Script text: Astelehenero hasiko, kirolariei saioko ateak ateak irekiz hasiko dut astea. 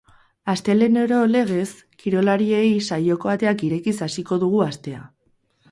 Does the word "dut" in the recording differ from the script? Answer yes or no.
yes